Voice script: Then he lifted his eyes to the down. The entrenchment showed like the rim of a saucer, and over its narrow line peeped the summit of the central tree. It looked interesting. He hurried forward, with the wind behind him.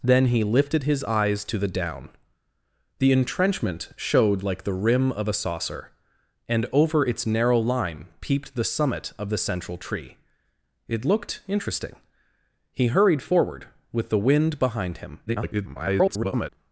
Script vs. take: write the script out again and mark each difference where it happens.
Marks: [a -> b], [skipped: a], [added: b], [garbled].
Then he lifted his eyes to the down. The entrenchment showed like the rim of a saucer, and over its narrow line peeped the summit of the central tree. It looked interesting. He hurried forward, with the wind behind him. [garbled]